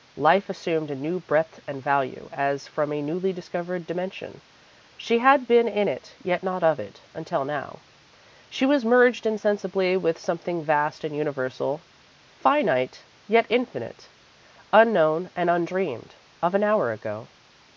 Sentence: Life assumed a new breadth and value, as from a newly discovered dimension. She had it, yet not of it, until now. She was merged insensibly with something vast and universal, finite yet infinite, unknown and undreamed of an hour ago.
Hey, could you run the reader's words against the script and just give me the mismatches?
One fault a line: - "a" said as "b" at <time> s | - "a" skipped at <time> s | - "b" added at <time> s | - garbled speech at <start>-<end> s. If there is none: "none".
- "been in" added at 5.5 s